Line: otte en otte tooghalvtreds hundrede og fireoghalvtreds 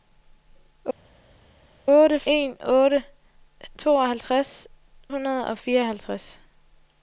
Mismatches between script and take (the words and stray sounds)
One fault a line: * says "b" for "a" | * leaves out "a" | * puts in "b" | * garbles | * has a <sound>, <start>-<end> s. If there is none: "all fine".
all fine